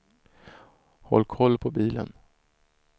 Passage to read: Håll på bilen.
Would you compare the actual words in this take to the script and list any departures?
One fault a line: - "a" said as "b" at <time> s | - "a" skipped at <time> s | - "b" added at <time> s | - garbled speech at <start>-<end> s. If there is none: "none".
- "koll" added at 1.2 s